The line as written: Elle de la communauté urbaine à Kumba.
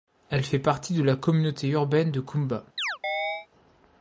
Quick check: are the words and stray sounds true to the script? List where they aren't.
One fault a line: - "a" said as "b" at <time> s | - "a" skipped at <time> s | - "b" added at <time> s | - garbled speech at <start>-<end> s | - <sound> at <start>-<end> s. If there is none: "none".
- "fait partie" added at 0.4 s
- "à" said as "de" at 2.1 s
- chirp at 2.8-3.5 s